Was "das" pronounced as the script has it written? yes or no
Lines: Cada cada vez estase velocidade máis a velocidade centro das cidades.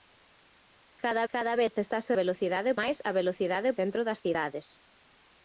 yes